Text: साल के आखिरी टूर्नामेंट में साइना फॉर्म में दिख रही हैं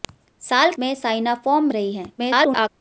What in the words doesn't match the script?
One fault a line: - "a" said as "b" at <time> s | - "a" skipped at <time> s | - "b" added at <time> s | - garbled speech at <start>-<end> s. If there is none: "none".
- "के आखिरी टूर्नामेंट" skipped at 0.7 s
- "में दिख" skipped at 1.7 s
- garbled speech at 2.2-2.7 s